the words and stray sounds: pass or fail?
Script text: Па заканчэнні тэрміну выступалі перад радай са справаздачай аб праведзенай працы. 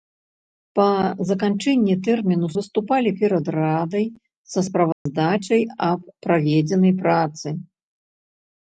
fail